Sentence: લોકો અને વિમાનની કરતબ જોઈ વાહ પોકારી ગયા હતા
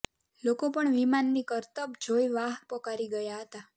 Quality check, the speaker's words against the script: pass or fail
fail